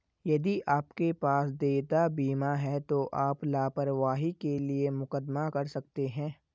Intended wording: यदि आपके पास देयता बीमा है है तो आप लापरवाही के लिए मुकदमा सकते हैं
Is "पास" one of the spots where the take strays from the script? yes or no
no